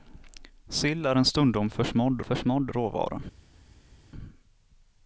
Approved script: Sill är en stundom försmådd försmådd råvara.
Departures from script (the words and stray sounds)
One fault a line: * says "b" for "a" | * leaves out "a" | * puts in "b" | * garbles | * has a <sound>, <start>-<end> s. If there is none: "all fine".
all fine